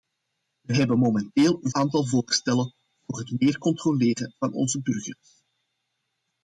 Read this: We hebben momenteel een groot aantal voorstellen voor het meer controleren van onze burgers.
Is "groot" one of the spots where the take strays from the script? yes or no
yes